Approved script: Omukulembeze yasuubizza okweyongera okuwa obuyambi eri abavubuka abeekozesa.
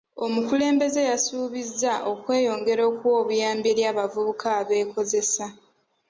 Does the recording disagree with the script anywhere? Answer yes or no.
no